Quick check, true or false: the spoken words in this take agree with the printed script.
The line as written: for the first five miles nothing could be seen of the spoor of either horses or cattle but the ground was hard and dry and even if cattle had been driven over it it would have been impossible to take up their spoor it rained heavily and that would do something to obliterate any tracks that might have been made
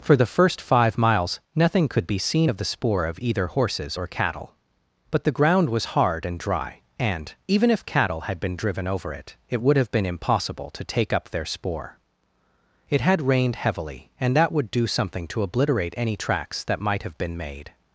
false